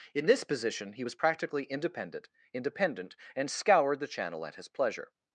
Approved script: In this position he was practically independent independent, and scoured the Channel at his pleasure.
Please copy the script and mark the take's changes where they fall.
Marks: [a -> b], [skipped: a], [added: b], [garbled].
In this position he was practically independent independent, and scoured the Channel at his pleasure.